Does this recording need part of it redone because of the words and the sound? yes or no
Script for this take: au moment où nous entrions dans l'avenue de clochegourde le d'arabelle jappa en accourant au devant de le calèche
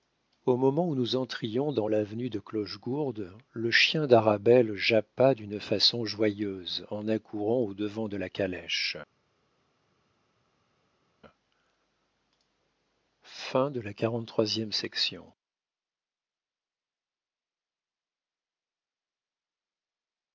yes